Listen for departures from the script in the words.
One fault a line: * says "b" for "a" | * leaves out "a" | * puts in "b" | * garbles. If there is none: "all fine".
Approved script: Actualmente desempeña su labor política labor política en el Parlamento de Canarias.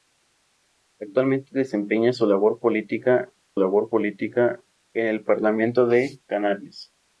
all fine